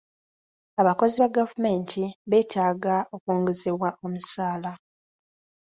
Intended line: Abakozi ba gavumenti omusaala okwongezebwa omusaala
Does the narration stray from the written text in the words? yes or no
yes